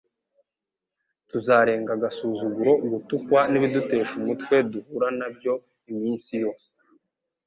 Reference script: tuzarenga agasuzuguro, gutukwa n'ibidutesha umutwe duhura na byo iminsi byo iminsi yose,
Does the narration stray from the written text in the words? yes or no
yes